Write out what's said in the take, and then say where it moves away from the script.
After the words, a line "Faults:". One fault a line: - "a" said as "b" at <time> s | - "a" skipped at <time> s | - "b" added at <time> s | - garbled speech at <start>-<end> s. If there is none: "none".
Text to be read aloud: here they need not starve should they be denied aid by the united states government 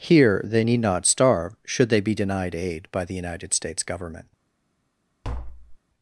here they need not starve should they be denied aid by the united states government
Faults:
none